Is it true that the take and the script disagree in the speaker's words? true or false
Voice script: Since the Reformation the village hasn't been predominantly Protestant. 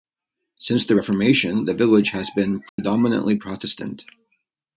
true